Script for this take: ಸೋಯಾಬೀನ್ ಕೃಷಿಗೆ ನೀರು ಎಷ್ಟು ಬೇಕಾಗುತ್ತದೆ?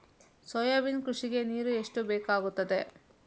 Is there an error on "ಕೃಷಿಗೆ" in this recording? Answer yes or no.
no